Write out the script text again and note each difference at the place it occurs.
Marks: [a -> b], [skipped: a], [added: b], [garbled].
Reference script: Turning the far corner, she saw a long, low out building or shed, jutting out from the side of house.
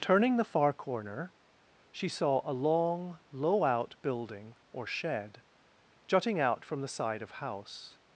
Turning the far corner, she saw a long, low out building or shed, jutting out from the side of house.